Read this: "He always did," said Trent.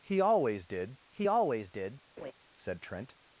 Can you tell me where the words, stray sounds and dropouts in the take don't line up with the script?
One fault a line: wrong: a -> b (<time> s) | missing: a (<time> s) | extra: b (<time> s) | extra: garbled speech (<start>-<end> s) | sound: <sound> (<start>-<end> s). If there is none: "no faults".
extra: he always did (1.1 s)
sound: laugh (2.2-2.3 s)